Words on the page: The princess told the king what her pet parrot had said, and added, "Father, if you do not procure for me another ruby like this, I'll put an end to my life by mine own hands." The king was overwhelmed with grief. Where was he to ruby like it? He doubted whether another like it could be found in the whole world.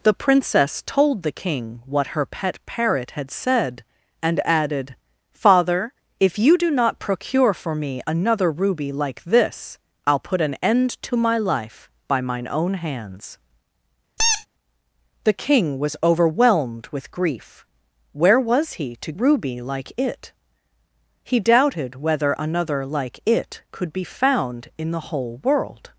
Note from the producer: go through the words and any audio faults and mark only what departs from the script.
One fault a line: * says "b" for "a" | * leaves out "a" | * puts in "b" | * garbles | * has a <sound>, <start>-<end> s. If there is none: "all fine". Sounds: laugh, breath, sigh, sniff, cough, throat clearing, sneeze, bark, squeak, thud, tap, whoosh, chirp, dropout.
* has a squeak, 14.2-14.5 s